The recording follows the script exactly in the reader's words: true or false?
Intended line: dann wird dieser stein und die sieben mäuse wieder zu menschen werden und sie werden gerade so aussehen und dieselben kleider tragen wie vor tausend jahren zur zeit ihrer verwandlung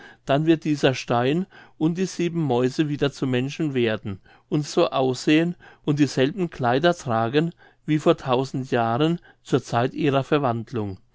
false